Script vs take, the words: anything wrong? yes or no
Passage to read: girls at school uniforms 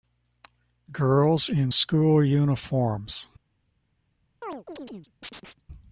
yes